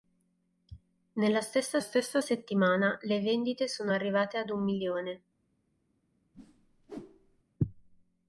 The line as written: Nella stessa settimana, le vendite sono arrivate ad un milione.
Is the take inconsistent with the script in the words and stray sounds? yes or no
yes